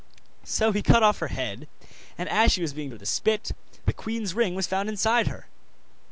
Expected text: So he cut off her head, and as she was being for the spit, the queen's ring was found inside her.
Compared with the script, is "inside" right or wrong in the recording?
right